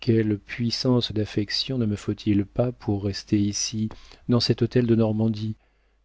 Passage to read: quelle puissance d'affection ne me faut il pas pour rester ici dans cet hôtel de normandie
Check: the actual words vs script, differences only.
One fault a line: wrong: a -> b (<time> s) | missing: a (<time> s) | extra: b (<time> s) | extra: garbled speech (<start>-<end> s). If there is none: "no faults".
no faults